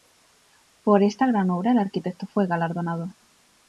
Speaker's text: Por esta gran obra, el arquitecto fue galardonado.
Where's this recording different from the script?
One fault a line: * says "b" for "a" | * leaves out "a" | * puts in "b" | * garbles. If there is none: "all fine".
all fine